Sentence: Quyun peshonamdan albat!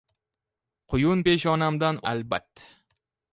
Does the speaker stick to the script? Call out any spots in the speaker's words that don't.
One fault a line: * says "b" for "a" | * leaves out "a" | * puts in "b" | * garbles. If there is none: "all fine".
all fine